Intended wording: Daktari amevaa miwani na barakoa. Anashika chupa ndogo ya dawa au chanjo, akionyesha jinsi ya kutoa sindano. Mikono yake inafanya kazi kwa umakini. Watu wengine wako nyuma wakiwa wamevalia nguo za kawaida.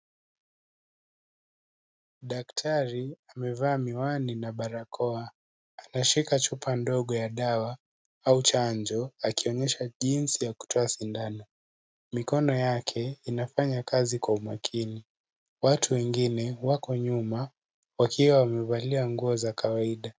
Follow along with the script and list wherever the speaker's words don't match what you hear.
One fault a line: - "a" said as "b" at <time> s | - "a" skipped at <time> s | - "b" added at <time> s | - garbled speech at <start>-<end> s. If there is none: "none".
none